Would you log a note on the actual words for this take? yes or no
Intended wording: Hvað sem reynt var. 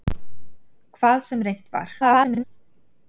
yes